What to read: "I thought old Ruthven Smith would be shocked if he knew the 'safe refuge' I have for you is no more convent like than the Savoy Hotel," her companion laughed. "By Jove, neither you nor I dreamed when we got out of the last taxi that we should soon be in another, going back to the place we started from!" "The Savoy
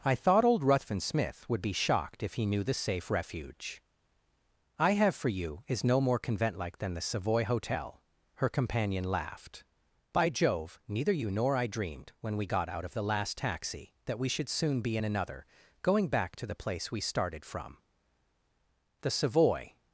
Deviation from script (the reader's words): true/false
false